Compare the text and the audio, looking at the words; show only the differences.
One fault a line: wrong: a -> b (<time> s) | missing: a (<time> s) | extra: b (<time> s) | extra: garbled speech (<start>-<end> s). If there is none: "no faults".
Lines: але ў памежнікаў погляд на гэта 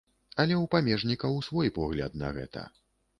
extra: свой (1.5 s)